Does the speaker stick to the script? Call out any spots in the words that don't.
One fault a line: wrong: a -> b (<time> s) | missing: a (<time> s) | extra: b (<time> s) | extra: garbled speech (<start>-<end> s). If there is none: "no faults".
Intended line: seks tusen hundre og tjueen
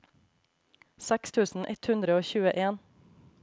extra: ett (1.7 s)